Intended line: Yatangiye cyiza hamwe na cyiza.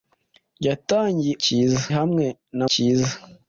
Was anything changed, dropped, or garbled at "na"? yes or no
no